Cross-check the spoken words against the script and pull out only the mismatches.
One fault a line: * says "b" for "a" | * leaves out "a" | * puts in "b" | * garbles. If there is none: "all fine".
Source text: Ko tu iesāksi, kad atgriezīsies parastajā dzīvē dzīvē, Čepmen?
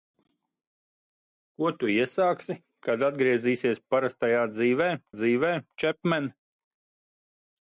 all fine